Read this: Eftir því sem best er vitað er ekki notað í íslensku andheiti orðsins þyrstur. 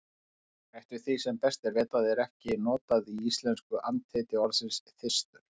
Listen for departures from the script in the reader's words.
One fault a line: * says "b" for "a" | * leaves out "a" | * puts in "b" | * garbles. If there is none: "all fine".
all fine